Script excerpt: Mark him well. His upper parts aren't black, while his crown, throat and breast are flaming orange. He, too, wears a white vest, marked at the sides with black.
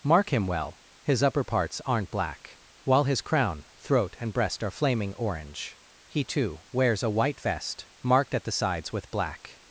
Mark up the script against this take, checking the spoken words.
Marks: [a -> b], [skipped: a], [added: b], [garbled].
Mark him well. His upper parts aren't black, while his crown, throat and breast are flaming orange. He, too, wears a white vest, marked at the sides with black.